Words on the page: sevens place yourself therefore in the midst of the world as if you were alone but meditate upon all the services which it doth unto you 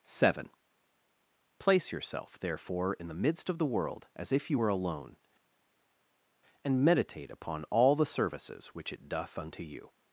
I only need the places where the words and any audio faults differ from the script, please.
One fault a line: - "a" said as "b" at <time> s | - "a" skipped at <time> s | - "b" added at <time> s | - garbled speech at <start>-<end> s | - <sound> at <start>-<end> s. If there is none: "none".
- "sevens" said as "seven" at 0.0 s
- "but" said as "and" at 6.6 s